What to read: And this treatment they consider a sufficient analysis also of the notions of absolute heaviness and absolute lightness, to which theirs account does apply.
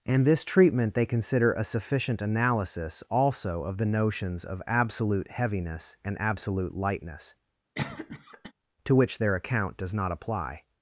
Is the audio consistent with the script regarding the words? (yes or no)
no